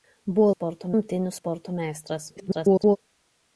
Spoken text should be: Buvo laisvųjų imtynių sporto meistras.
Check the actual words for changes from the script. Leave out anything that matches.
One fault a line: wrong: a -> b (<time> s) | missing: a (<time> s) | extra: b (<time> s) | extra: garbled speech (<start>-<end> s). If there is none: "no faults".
wrong: laisvųjų -> sporto (0.5 s)
extra: garbled speech (2.4-3.0 s)